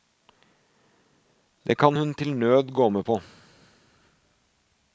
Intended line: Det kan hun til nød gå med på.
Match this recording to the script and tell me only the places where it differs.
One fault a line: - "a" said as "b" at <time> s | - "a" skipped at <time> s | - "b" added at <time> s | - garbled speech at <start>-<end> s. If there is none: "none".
none